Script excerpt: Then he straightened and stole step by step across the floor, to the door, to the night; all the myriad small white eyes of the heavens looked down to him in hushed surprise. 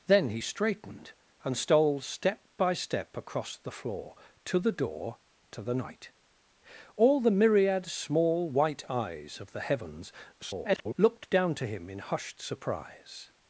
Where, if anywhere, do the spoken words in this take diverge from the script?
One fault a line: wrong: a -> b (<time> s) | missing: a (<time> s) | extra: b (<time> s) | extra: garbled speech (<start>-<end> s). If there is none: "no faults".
extra: garbled speech (10.3-10.9 s)